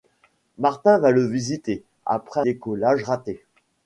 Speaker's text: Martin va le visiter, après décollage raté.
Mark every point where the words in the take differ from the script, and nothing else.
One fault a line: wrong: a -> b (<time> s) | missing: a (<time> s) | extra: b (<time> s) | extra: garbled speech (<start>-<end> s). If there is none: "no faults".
no faults